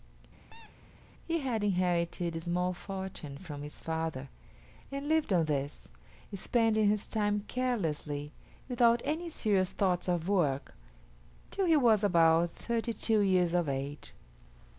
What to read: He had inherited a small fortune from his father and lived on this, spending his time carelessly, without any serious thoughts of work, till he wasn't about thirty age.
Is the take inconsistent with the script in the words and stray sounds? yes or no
yes